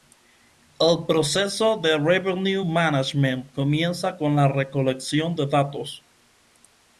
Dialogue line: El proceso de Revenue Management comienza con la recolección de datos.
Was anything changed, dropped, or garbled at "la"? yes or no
no